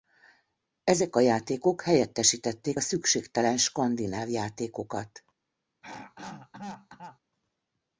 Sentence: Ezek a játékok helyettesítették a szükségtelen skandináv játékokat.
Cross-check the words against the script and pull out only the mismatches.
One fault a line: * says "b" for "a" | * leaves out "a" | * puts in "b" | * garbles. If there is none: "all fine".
all fine